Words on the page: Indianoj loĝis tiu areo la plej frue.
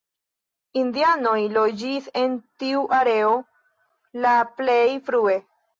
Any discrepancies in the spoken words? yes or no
yes